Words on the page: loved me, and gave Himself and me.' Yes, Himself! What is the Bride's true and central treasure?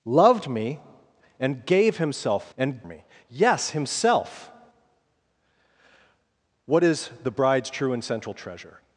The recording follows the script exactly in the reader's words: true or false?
true